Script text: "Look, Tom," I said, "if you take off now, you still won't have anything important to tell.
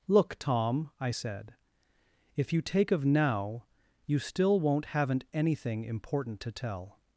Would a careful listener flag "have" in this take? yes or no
yes